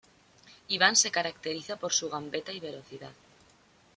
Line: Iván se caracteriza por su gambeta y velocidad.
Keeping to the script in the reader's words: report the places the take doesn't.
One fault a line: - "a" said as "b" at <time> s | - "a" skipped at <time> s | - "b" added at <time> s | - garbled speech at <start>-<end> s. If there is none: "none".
none